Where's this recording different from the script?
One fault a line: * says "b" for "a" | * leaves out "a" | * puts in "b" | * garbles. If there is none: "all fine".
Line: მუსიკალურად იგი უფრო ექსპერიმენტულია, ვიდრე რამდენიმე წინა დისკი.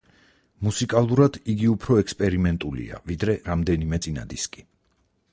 all fine